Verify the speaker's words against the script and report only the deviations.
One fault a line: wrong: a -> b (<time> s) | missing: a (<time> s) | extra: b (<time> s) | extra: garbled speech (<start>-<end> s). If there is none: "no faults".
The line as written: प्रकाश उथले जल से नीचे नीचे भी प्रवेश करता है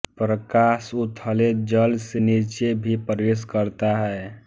missing: नीचे (2.7 s)